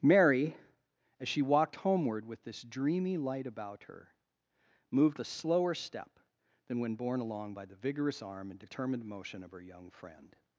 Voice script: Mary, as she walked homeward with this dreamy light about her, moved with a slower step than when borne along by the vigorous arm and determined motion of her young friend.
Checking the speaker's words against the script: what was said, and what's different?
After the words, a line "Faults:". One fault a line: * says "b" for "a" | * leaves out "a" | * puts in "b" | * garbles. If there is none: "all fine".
Mary, as she walked homeward with this dreamy light about her, moved a slower step than when borne along by the vigorous arm and determined motion of her young friend.
Faults:
* leaves out "with"